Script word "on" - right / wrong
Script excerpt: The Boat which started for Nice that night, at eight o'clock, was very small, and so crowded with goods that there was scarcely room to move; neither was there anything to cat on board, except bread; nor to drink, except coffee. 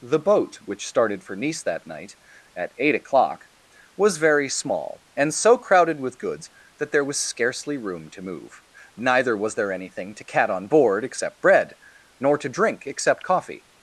right